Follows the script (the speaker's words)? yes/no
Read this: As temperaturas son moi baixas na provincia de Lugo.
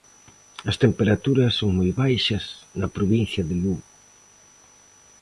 yes